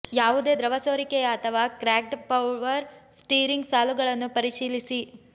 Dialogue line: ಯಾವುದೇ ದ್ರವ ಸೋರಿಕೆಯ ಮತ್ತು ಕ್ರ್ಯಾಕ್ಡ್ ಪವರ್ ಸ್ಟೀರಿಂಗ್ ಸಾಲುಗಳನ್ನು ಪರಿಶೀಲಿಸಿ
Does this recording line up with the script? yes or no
no